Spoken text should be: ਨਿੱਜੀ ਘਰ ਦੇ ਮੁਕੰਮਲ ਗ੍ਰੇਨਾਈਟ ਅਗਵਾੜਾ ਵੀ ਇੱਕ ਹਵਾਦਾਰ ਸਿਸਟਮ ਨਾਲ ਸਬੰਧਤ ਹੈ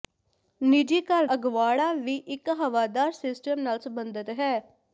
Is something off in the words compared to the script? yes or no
yes